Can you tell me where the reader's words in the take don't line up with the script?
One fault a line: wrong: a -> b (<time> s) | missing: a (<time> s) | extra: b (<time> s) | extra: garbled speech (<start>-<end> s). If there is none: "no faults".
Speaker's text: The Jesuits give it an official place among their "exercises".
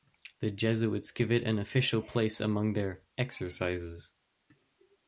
no faults